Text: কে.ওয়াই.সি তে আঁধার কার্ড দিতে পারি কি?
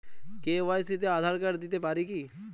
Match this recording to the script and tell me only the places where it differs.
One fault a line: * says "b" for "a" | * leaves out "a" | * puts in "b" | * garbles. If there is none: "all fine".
all fine